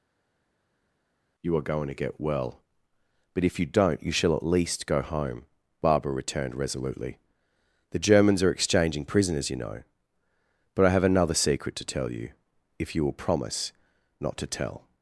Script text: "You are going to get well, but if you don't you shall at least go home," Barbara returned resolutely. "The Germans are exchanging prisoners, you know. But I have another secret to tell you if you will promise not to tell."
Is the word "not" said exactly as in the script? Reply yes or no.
yes